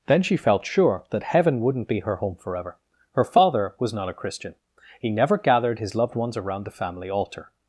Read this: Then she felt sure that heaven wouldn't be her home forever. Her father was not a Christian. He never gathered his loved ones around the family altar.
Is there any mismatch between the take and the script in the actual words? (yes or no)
no